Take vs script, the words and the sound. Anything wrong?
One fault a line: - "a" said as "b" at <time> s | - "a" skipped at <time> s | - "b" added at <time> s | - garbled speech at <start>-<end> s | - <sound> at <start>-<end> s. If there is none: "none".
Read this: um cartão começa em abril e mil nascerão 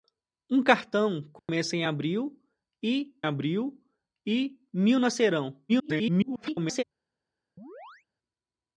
- dropout at 1.4-1.5 s
- "abril e" added at 3.2 s
- garbled speech at 5.7-6.8 s
- chirp at 7.6-8.1 s